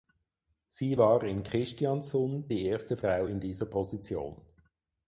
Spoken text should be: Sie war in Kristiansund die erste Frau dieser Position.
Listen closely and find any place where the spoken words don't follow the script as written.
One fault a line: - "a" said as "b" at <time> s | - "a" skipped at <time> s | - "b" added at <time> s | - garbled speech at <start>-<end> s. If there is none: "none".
- "in" added at 3.2 s